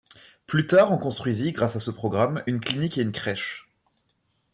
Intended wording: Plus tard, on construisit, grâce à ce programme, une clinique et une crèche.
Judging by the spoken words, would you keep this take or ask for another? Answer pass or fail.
pass